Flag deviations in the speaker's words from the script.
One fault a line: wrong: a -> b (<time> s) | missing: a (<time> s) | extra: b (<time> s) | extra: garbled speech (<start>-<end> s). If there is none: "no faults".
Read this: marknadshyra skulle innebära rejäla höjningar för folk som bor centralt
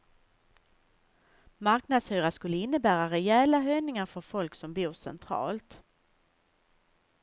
no faults